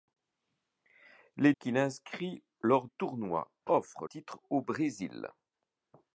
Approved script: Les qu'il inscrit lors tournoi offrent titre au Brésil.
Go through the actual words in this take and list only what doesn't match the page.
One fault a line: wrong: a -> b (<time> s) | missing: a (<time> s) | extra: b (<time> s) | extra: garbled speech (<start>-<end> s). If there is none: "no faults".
no faults